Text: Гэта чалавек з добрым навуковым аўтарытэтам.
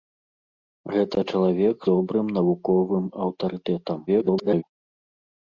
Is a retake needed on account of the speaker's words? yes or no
yes